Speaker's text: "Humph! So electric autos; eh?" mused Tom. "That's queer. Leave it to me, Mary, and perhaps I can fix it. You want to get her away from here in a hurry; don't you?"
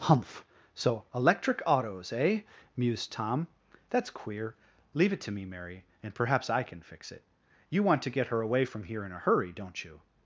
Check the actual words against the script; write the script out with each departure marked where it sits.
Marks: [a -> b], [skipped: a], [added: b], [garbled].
"Humph! So electric autos; eh?" mused Tom. "That's queer. Leave it to me, Mary, and perhaps I can fix it. You want to get her away from here in a hurry; don't you?"